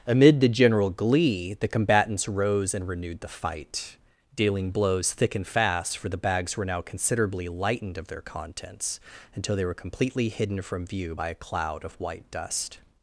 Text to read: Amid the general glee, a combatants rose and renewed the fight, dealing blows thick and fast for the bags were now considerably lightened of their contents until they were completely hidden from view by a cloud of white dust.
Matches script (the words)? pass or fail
fail